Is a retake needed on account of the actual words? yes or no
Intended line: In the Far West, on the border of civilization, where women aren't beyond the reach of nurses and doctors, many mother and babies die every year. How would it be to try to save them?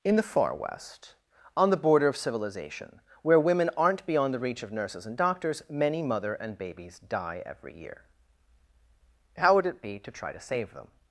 no